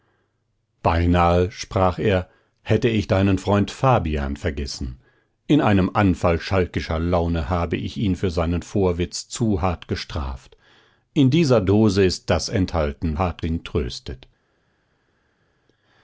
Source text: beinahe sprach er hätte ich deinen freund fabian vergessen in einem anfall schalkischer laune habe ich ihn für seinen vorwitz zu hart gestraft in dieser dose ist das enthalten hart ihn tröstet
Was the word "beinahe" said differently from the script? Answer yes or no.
no